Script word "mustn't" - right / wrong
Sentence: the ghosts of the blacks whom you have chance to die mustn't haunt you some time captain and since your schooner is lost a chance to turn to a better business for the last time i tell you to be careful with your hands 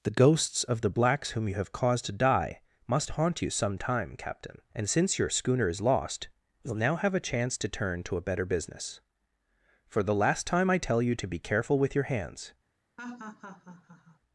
wrong